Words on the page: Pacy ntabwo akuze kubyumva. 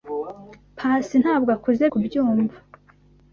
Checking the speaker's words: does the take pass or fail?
pass